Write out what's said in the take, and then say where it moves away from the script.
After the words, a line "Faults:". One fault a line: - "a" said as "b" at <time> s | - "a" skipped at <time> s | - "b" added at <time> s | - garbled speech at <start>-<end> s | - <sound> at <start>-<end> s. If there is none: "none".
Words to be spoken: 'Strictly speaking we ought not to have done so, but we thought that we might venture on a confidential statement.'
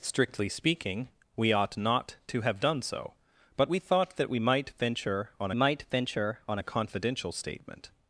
'Strictly speaking we ought not to have done so, but we thought that we might venture on might venture on a confidential statement.'
Faults:
- "might venture on" added at 5.5 s